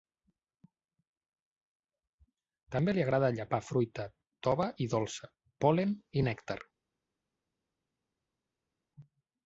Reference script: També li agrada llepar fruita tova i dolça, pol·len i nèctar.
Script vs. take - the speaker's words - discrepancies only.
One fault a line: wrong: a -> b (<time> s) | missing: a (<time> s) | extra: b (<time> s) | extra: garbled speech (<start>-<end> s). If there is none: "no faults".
no faults